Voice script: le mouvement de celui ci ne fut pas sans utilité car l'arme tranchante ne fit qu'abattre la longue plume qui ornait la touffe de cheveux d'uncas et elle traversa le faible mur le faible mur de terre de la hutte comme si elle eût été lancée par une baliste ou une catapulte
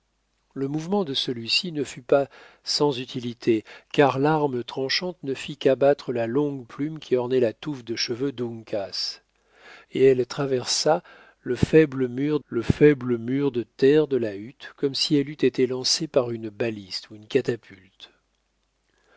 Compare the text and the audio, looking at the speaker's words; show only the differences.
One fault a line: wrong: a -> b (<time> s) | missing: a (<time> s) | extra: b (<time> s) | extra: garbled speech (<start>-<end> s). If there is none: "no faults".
no faults